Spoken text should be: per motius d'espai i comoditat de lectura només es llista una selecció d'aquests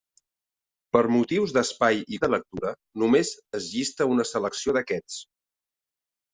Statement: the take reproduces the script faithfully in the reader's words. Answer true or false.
false